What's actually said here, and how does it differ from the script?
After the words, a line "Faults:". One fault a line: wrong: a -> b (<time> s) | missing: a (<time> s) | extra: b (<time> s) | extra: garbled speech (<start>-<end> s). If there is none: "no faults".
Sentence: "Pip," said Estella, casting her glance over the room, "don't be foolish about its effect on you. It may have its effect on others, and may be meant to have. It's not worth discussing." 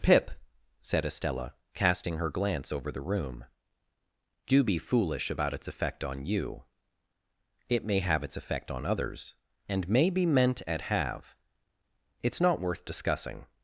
"Pip," said Estella, casting her glance over the room, "do be foolish about its effect on you. It may have its effect on others, and may be meant at have. It's not worth discussing."
Faults:
wrong: don't -> do (4.5 s)
wrong: to -> at (10.7 s)